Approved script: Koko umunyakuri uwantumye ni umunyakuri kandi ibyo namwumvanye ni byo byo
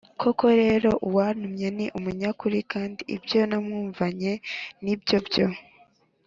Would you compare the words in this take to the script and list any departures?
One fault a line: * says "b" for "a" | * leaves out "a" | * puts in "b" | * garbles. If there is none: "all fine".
* says "rero" for "umunyakuri"